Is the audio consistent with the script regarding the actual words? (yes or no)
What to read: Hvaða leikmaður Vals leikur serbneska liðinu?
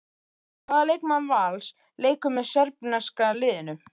no